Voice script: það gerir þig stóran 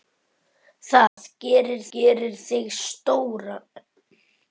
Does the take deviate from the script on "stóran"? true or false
false